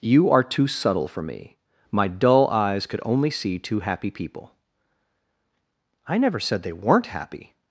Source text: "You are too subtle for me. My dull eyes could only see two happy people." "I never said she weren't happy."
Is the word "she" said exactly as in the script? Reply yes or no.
no